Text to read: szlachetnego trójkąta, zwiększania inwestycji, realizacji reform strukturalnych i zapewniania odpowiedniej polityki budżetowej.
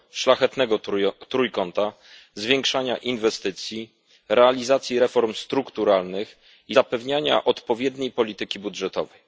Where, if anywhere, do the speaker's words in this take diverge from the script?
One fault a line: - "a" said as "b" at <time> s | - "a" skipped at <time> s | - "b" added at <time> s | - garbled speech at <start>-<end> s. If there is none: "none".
none